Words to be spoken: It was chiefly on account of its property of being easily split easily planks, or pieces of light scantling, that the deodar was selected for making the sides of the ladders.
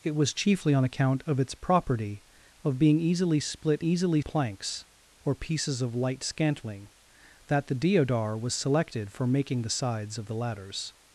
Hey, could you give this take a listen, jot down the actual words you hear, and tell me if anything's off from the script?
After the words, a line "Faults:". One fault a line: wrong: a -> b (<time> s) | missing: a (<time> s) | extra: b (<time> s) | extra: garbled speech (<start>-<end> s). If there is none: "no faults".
It was chiefly on account of its property of being easily split easily planks, or pieces of light scantling, that the deodar was selected for making the sides of the ladders.
Faults:
no faults